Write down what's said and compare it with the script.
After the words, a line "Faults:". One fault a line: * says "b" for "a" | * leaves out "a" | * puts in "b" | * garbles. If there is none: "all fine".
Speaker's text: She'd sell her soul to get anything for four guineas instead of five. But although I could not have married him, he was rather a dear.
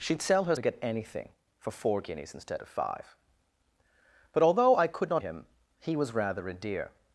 She'd sell her to get anything for four guineas instead of five. But although I could not him, he was rather a dear.
Faults:
* leaves out "soul"
* leaves out "have married"